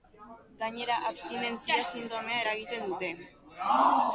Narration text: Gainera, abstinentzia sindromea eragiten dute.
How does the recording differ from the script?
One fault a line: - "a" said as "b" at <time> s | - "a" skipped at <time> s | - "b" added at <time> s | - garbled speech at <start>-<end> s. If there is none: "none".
none